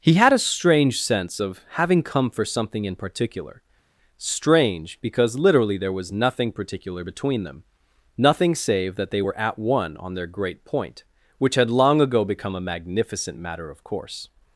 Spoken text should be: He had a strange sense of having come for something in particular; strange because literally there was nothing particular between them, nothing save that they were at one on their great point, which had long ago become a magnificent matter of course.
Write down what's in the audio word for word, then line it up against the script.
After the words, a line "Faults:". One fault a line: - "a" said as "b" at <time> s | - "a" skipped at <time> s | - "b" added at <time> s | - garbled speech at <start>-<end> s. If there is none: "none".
He had a strange sense of having come for something in particular; strange because literally there was nothing particular between them, nothing save that they were at one on their great point, which had long ago become a magnificent matter of course.
Faults:
none